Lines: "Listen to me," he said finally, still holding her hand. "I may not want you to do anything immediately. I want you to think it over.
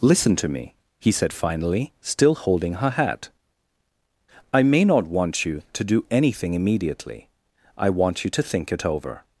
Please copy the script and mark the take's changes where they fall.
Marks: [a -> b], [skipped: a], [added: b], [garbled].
"Listen to me," he said finally, still holding her [hand. -> hat] "I may not want you to do anything immediately. I want you to think it over.